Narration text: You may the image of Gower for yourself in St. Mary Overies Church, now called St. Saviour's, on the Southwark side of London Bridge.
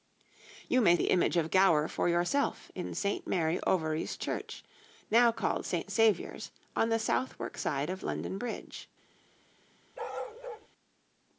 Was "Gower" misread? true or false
false